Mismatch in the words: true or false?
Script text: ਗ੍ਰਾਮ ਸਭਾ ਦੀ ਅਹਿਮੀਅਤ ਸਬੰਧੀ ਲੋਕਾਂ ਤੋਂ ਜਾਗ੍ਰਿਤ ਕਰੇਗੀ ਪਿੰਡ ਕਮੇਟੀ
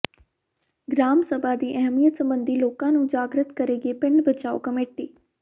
true